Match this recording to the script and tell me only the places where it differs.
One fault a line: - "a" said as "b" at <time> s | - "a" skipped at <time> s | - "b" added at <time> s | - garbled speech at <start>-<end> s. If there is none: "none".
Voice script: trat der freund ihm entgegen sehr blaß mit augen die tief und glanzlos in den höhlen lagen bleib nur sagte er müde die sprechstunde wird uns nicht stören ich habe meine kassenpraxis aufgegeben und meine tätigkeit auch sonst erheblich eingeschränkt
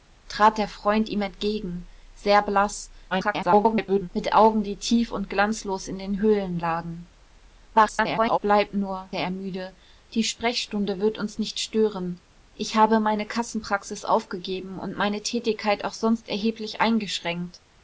- garbled speech at 3.1-4.1 s
- garbled speech at 7.7-8.4 s
- "sagte" skipped at 9.1 s